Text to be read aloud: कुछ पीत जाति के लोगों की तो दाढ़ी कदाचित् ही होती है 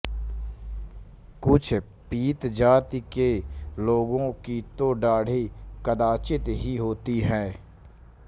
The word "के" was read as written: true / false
true